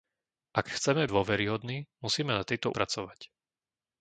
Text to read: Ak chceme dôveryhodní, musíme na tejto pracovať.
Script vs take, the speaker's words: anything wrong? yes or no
no